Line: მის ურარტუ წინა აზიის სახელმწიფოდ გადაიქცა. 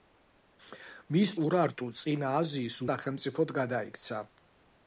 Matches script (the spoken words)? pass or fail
pass